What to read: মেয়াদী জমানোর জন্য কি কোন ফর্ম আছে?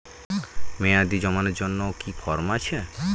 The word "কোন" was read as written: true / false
false